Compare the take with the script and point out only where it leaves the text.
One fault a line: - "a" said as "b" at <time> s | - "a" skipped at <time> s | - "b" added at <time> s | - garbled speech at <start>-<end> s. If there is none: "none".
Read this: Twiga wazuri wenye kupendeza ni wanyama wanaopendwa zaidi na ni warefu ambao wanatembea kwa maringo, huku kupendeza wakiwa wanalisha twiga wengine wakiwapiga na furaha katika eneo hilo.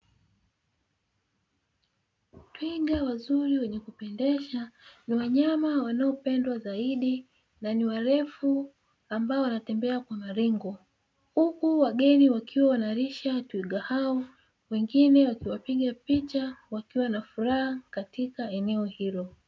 - "kupendeza" said as "wageni" at 11.8 s
- "hao" added at 13.8 s
- "picha wakiwa" added at 15.9 s